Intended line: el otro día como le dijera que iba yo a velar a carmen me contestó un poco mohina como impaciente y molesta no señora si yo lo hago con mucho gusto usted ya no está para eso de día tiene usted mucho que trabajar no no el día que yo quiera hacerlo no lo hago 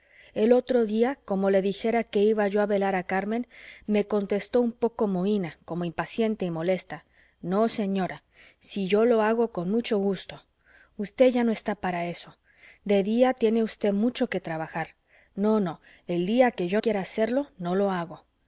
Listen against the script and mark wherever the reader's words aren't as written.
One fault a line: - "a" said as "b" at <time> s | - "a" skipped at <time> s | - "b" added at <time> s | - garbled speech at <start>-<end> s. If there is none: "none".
none